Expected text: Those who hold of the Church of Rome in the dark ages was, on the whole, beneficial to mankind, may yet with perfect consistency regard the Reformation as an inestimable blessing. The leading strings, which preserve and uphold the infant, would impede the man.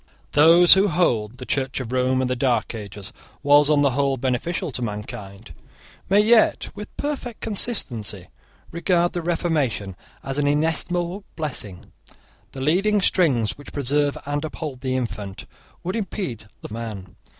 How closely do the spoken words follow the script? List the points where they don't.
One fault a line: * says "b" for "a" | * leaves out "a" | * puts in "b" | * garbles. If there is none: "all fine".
all fine